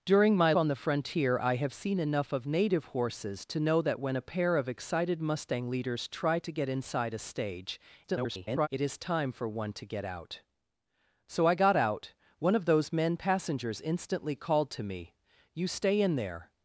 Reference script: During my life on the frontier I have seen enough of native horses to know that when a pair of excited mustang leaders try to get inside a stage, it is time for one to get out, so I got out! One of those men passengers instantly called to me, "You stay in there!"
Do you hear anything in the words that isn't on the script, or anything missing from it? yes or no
yes